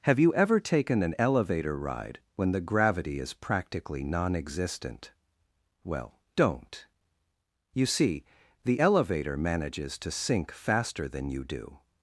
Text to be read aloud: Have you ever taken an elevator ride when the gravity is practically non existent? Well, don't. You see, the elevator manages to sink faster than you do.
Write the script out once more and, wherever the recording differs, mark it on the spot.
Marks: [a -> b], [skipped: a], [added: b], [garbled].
Have you ever taken an elevator ride when the gravity is practically non existent? Well, don't. You see, the elevator manages to sink faster than you do.